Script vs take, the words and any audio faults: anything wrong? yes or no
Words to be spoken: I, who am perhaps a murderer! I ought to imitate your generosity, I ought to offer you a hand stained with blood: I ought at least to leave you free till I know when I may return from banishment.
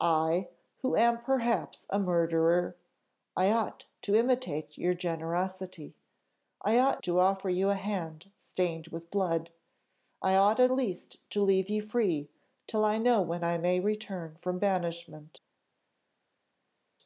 no